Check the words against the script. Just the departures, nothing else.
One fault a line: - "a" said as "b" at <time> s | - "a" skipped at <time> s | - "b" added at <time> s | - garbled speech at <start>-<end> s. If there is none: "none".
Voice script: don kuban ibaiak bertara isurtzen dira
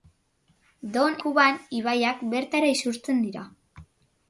none